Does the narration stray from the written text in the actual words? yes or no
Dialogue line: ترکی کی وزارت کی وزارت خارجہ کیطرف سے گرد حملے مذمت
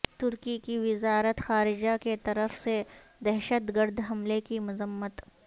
yes